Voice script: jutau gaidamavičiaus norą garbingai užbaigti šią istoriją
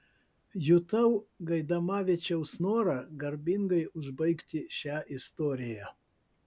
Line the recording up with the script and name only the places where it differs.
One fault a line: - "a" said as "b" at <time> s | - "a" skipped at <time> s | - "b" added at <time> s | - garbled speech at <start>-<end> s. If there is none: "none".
none